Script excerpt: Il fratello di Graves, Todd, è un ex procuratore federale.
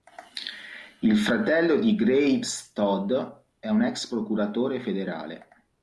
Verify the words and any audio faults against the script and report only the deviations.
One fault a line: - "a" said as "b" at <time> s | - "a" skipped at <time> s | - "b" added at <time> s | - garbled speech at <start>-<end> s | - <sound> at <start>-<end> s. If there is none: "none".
none